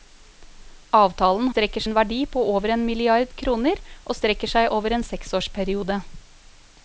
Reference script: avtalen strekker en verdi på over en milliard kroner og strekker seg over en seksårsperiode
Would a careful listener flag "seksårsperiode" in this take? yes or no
no